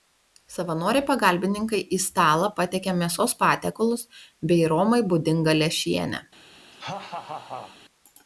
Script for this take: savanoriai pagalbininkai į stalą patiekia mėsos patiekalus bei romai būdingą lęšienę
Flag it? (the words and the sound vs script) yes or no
yes